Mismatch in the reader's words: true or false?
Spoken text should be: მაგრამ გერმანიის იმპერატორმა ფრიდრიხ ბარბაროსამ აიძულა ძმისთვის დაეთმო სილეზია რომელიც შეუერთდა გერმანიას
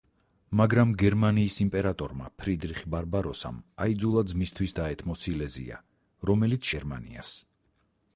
true